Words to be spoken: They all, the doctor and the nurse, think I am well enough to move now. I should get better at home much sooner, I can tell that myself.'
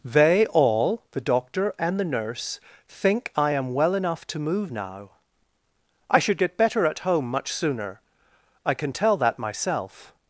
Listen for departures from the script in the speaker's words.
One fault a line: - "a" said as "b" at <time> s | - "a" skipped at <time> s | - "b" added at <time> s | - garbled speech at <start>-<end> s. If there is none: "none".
none